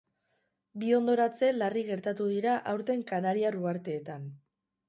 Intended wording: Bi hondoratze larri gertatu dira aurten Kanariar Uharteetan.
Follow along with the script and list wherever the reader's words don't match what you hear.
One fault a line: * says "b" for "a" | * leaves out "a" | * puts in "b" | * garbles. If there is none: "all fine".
all fine